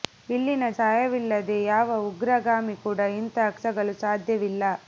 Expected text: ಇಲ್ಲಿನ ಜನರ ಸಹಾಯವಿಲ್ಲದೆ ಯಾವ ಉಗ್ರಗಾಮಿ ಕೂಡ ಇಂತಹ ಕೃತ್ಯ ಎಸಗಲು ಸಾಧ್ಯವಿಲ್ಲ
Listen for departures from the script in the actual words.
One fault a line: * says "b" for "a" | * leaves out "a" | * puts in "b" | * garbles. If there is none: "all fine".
* leaves out "ಜನರ"
* leaves out "ಕೃತ್ಯ"